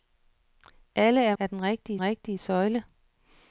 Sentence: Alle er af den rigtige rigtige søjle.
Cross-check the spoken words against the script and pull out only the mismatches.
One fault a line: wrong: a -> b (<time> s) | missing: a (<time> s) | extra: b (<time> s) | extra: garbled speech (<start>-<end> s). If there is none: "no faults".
no faults